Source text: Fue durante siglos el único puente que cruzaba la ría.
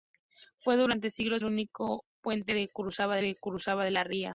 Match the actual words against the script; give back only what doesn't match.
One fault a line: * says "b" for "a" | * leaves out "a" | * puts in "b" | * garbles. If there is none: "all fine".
* leaves out "el"
* puts in "que cruzaba"